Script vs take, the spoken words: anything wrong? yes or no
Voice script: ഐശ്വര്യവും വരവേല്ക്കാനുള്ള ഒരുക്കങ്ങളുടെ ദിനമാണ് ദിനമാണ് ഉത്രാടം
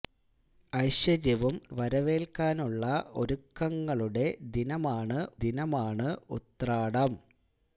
no